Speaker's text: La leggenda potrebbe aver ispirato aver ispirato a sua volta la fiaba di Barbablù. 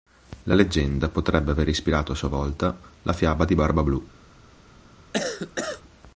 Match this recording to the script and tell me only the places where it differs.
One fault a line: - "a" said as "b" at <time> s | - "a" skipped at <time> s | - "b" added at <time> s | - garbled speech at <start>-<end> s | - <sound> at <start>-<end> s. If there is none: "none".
- "aver ispirato" skipped at 2.1 s
- cough at 5.1-5.8 s